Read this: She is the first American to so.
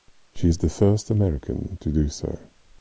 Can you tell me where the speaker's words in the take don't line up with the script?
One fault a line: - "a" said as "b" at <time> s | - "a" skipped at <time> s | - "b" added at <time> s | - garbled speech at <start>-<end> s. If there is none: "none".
- "do" added at 1.9 s